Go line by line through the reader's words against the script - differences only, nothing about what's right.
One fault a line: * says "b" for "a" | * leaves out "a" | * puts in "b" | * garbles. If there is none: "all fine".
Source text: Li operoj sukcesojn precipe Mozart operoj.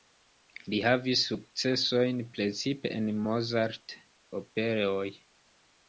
* says "havis" for "operoj"
* puts in "en"